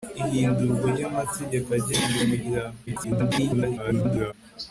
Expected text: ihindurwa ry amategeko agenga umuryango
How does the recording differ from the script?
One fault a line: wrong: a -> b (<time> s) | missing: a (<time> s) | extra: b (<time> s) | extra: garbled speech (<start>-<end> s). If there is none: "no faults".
extra: garbled speech (2.9-4.3 s)